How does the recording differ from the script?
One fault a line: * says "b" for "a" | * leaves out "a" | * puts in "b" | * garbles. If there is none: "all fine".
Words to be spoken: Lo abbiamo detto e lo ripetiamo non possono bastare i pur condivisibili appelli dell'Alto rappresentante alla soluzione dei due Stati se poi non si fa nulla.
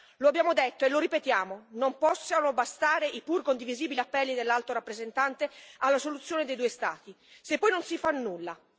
all fine